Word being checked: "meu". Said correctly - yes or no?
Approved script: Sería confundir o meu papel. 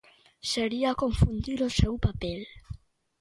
no